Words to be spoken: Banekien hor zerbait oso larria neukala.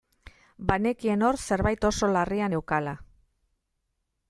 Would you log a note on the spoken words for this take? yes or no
no